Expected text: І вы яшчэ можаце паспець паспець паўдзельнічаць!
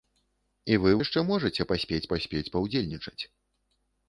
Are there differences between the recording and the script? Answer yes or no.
no